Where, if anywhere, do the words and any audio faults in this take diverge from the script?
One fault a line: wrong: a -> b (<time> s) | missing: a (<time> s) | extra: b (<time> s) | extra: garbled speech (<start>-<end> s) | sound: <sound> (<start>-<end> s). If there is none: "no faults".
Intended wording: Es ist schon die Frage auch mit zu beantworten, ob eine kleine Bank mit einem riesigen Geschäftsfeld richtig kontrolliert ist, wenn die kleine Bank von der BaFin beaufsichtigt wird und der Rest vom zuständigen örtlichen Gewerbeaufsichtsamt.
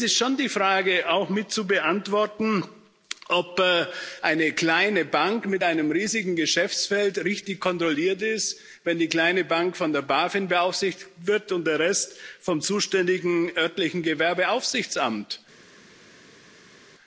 no faults